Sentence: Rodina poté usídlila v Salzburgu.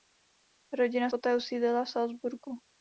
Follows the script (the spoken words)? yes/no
yes